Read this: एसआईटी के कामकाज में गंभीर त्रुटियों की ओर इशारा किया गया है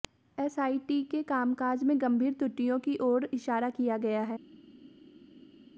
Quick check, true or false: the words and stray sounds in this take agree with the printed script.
true